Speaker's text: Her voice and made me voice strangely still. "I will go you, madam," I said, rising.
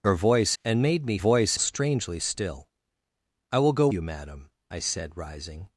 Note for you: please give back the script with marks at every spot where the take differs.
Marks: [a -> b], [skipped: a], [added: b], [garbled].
Her voice and made me voice strangely still. "I will go you, madam," I said, rising.